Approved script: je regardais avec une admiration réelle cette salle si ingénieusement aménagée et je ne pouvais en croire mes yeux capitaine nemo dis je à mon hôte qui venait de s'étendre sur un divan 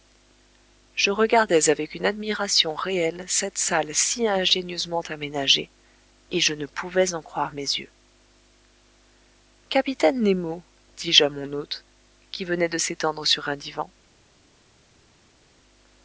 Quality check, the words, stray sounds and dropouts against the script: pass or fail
pass